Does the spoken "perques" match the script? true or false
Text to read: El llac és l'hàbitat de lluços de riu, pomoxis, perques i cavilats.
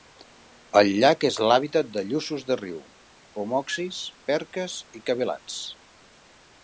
true